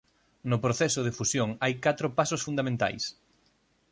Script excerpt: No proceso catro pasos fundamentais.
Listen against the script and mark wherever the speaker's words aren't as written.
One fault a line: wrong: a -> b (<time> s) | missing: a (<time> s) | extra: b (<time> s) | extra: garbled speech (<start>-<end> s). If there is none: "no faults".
extra: de fusión hai (1.0 s)